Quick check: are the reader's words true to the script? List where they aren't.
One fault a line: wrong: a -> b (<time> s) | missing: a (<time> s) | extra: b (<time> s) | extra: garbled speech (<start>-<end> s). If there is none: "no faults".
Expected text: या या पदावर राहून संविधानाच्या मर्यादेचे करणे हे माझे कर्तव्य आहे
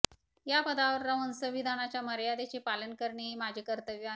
missing: या (0.6 s)
extra: पालन (2.6 s)